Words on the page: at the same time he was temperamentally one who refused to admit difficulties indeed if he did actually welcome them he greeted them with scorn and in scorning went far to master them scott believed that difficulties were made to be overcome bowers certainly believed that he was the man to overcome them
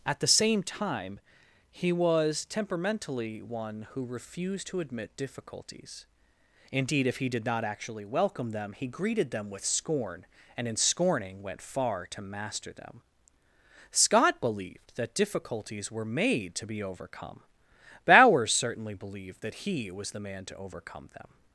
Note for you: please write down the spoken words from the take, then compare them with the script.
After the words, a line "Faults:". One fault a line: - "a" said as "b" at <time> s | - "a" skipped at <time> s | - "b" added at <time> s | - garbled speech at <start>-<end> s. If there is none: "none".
at the same time he was temperamentally one who refused to admit difficulties indeed if he did not actually welcome them he greeted them with scorn and in scorning went far to master them scott believed that difficulties were made to be overcome bowers certainly believed that he was the man to overcome them
Faults:
- "not" added at 7.5 s